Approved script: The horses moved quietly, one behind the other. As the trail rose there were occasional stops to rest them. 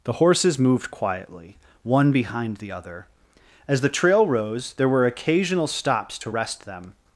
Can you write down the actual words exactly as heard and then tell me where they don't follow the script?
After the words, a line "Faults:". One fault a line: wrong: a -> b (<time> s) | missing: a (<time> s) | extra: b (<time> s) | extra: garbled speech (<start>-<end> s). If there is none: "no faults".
The horses moved quietly, one behind the other. As the trail rose there were occasional stops to rest them.
Faults:
no faults